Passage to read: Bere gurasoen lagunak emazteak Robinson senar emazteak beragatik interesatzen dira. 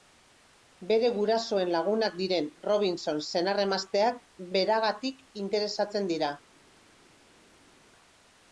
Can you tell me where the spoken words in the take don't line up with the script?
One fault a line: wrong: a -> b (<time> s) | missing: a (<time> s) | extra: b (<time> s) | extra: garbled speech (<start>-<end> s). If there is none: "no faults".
wrong: emazteak -> diren (2.2 s)